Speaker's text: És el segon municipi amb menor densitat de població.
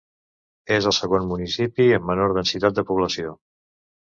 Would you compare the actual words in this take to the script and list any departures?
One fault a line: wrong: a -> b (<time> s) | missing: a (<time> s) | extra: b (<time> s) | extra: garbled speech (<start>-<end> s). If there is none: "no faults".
no faults